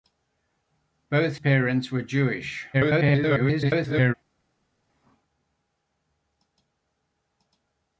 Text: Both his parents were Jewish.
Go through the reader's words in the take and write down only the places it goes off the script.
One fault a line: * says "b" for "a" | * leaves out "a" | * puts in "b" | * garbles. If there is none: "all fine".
* leaves out "his"
* garbles